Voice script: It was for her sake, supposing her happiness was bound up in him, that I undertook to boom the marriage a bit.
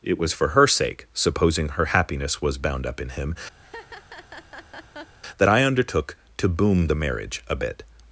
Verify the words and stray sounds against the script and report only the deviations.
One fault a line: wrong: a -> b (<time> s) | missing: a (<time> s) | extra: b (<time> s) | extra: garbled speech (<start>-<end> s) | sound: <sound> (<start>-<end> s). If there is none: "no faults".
sound: laugh (3.6-5.2 s)